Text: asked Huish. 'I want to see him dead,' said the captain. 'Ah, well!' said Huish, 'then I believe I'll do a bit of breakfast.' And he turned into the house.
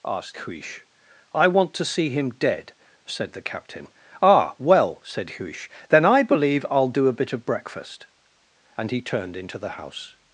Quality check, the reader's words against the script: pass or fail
pass